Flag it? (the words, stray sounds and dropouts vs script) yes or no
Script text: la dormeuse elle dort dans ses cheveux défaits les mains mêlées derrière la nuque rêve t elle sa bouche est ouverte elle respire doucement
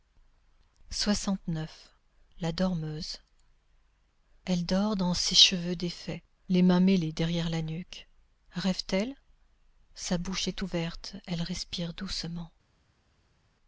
no